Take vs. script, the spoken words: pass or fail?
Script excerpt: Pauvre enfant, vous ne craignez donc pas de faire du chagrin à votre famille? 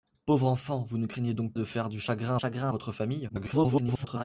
fail